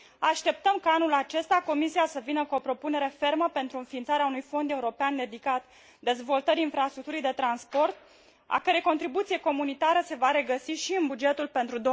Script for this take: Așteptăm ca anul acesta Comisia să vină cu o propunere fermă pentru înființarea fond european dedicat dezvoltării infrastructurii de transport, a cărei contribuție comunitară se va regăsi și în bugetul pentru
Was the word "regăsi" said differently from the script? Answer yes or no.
no